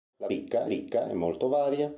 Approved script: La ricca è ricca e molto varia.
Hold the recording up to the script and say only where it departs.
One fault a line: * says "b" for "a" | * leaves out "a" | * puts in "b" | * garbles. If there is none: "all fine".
all fine